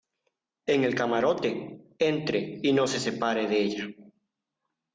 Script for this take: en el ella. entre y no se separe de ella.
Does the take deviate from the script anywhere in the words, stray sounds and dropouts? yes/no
yes